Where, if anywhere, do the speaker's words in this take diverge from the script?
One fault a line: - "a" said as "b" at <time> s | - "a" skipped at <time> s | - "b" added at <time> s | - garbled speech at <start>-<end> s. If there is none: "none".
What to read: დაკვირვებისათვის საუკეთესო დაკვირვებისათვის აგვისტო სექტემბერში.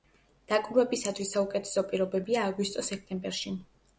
- "დაკვირვებისათვის" said as "პირობებია" at 1.9 s